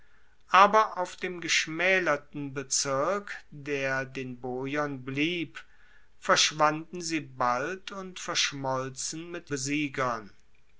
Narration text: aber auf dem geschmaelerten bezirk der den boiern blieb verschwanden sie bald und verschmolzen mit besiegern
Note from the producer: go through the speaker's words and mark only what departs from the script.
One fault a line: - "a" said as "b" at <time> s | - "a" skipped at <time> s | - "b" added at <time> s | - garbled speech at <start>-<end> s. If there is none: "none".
none